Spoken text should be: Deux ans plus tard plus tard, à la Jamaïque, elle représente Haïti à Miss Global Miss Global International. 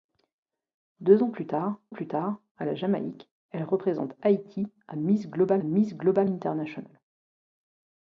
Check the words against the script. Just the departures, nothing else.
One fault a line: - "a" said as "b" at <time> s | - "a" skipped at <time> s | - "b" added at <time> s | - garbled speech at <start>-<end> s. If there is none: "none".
none